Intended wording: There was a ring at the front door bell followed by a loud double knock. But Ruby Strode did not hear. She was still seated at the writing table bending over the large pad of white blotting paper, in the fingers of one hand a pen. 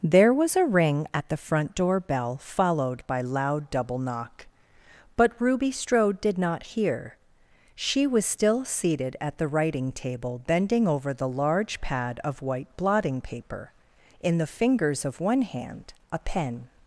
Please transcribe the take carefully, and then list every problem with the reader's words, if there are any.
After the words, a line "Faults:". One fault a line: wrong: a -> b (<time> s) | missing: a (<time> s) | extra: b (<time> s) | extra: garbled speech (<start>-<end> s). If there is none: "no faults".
There was a ring at the front door bell followed by loud double knock. But Ruby Strode did not hear. She was still seated at the writing table bending over the large pad of white blotting paper, in the fingers of one hand a pen.
Faults:
missing: a (3.2 s)